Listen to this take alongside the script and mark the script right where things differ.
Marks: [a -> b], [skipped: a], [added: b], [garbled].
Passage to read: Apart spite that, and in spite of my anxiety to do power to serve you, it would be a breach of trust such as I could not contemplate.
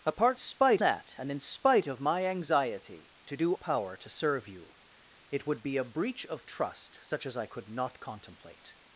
Apart spite that, and in spite of my anxiety to do power to serve you, it would be a breach of trust such as I could not contemplate.